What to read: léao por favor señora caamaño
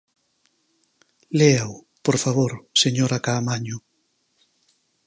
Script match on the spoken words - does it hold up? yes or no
yes